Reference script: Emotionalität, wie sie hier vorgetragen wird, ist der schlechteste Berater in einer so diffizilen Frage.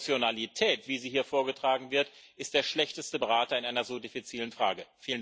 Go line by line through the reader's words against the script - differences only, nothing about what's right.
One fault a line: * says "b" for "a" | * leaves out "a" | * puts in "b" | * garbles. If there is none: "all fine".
all fine